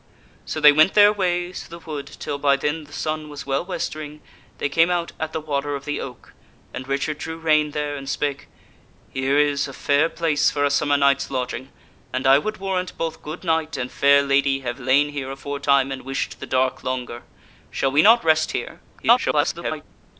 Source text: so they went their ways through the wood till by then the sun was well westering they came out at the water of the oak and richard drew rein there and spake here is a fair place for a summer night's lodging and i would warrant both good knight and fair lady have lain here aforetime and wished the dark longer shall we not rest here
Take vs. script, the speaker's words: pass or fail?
fail